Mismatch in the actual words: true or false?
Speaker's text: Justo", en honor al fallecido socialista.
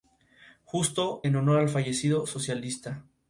false